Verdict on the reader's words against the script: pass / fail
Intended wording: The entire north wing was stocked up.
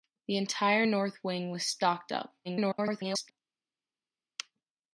fail